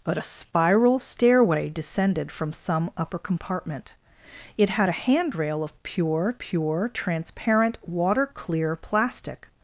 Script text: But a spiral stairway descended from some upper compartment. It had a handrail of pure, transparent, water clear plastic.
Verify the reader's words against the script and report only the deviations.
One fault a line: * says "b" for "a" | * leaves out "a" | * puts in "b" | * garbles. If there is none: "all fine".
* puts in "pure"